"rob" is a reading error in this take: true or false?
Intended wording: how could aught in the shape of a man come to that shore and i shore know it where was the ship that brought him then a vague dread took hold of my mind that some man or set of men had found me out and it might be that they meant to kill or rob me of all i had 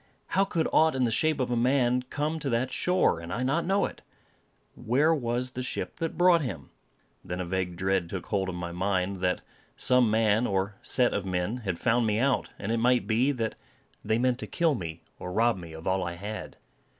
false